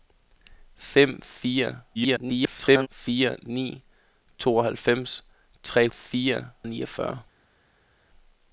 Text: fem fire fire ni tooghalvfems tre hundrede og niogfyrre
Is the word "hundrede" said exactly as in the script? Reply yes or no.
no